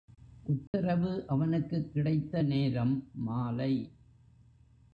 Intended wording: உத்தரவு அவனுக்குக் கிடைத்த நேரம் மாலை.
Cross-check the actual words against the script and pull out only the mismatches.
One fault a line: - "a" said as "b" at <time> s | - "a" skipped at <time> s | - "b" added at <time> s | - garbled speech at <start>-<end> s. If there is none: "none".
none